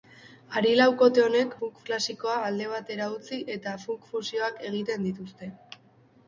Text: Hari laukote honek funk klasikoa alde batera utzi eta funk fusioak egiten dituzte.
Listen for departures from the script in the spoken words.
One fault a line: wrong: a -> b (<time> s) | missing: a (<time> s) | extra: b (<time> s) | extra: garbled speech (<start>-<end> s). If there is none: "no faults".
no faults